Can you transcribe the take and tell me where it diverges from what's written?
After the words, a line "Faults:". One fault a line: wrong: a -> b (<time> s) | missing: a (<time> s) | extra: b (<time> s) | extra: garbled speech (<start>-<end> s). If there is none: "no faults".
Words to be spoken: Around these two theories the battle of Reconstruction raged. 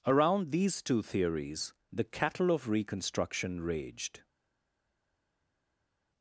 Around these two theories the cattle of Reconstruction raged.
Faults:
wrong: battle -> cattle (2.0 s)